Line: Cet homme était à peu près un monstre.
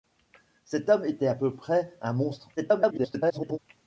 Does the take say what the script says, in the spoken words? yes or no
no